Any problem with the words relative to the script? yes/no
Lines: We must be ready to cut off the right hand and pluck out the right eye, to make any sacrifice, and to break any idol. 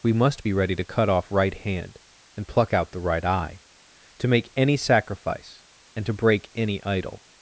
yes